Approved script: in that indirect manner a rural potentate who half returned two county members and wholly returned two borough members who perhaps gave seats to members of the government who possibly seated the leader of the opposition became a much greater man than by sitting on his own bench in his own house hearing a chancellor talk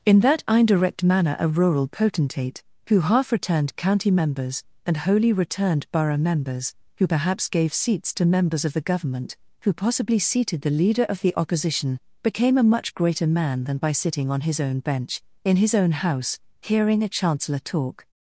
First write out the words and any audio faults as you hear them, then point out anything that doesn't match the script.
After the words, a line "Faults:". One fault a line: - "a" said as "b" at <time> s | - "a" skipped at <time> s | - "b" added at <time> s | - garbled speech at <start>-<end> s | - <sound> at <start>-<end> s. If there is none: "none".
in that indirect manner a rural potentate who half returned county members and wholly returned borough members who perhaps gave seats to members of the government who possibly seated the leader of the opposition became a much greater man than by sitting on his own bench in his own house hearing a chancellor talk
Faults:
- "two" skipped at 3.8 s
- "two" skipped at 5.8 s